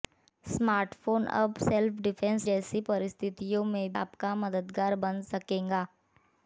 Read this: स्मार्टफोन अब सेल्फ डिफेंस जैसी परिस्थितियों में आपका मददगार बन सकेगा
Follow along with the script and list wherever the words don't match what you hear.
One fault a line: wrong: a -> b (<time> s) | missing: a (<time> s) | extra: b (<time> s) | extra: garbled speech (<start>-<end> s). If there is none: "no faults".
no faults